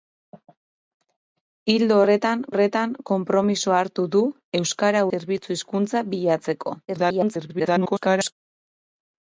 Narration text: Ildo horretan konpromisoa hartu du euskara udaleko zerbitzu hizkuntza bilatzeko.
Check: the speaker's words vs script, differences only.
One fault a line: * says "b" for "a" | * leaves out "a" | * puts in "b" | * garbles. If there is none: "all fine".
* puts in "horretan"
* leaves out "udaleko"
* garbles